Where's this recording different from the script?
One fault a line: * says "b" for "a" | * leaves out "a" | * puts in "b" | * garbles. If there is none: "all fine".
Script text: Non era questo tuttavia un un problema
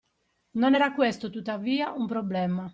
* leaves out "un"